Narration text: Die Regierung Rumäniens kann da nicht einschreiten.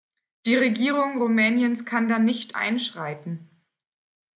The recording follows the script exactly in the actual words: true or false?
true